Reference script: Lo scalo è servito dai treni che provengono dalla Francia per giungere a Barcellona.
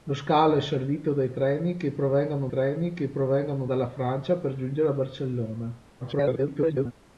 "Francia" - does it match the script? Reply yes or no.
yes